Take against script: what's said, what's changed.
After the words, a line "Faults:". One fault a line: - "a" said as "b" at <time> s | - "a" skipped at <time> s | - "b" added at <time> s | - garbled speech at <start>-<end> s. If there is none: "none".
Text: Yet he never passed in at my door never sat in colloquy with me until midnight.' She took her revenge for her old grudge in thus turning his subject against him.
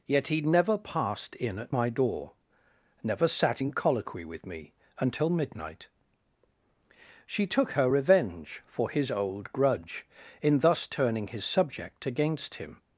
Yet he never passed in at my door never sat in colloquy with me until midnight.' She took her revenge for his old grudge in thus turning his subject against him.
Faults:
- "her" said as "his" at 8.9 s